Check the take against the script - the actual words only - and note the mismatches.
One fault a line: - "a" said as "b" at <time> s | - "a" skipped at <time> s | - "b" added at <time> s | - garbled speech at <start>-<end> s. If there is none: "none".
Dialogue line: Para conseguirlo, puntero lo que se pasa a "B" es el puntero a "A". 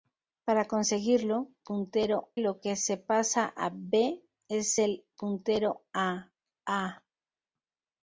none